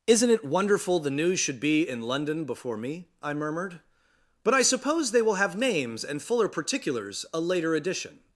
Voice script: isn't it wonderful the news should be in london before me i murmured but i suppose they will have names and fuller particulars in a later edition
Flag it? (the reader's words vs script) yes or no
yes